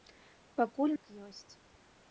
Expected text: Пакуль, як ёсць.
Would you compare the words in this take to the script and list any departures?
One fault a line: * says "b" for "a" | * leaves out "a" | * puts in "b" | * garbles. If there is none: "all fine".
all fine